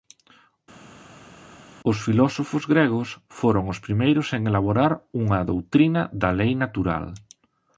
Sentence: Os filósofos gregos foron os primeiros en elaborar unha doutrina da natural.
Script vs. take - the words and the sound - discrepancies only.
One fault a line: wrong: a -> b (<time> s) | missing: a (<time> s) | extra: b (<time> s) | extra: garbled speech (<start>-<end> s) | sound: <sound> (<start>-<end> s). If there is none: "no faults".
extra: lei (6.4 s)